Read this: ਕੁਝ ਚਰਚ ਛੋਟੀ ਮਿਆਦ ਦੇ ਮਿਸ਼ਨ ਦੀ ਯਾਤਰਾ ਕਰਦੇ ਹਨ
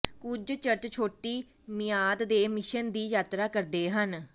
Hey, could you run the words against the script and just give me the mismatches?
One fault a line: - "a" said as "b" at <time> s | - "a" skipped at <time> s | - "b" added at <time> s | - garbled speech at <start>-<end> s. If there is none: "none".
none